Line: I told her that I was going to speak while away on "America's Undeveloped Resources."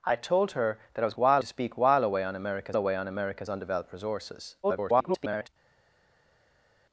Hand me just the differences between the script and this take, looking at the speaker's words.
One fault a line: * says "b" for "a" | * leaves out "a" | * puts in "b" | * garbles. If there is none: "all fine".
* says "while" for "going"
* puts in "away on America's"
* garbles